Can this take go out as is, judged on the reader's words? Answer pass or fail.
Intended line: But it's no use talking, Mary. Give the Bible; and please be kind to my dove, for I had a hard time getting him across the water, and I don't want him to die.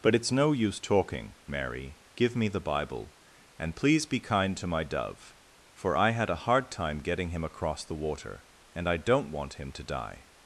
fail